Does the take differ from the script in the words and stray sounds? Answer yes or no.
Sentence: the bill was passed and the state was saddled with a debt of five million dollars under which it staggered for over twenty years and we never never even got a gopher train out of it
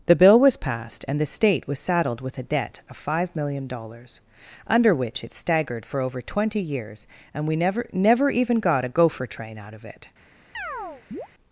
yes